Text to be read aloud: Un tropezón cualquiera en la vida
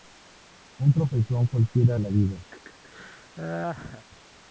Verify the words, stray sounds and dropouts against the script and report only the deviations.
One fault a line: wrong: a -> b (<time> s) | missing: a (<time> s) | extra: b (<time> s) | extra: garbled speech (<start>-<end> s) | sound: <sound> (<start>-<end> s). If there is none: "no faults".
sound: laugh (2.5-4.1 s)